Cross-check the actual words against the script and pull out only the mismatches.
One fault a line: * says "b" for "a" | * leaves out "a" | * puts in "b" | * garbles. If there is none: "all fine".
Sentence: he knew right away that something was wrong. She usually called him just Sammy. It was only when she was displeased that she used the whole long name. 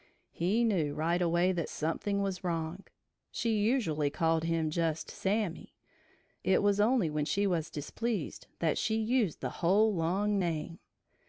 all fine